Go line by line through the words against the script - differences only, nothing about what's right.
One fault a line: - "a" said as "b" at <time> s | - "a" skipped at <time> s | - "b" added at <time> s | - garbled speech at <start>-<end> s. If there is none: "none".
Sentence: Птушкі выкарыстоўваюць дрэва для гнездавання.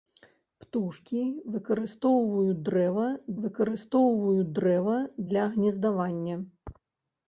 - "выкарыстоўваюць дрэва" added at 3.4 s